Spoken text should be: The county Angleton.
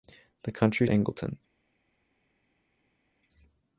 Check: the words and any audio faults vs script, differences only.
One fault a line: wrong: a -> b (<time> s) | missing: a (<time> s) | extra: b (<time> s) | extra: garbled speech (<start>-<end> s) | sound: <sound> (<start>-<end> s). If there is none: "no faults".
no faults